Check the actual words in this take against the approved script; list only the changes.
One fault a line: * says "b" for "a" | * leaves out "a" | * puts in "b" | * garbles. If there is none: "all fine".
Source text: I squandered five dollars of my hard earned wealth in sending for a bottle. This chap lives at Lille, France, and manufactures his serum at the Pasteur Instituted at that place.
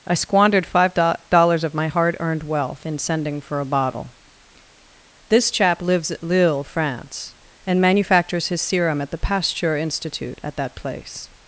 * says "Institute" for "Instituted"